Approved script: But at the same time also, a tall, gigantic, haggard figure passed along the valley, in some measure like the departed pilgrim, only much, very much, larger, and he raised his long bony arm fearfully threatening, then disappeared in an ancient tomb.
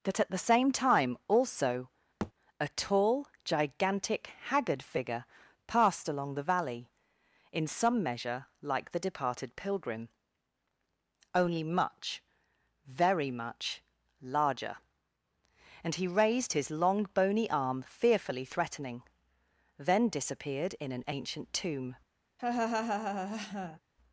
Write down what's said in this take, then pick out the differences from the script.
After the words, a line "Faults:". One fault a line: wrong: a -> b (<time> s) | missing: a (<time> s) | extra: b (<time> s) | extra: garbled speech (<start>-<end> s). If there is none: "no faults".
That at the same time also, a tall, gigantic, haggard figure passed along the valley, in some measure like the departed pilgrim, only much, very much, larger, and he raised his long bony arm fearfully threatening, then disappeared in an ancient tomb.
Faults:
wrong: But -> That (0.0 s)